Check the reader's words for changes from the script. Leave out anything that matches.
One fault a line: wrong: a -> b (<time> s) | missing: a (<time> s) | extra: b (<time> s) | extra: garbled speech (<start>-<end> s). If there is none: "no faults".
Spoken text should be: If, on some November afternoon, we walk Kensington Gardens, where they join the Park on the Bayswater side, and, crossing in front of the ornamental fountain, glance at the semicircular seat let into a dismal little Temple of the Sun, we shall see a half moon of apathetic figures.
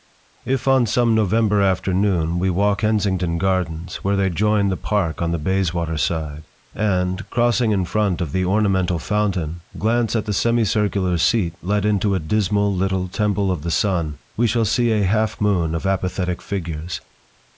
no faults